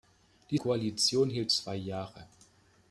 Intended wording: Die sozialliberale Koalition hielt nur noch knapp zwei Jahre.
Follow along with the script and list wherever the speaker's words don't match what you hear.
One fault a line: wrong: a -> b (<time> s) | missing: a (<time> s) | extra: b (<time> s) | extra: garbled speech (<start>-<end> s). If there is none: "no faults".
missing: sozialliberale (0.6 s)
missing: nur noch knapp (1.5 s)